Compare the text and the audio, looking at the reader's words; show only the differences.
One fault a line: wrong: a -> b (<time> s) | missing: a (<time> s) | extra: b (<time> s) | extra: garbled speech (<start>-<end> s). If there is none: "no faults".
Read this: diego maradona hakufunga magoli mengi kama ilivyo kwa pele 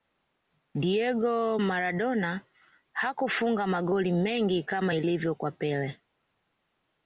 no faults